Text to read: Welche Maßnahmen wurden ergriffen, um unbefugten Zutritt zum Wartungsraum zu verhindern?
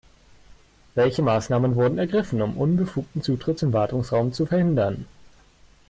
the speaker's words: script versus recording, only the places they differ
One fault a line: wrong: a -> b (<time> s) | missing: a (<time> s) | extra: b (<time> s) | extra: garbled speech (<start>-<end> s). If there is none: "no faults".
no faults